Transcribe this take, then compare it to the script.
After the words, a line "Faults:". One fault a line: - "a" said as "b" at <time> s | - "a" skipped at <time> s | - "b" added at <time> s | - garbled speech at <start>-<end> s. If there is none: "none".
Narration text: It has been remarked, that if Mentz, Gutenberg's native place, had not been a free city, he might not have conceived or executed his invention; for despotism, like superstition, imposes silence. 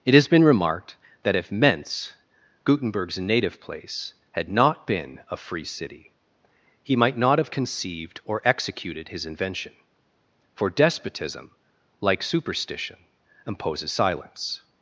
It has been remarked, that if Mentz, Gutenberg's native place, had not been a free city, he might not have conceived or executed his invention; for despotism, like superstition, imposes silence.
Faults:
none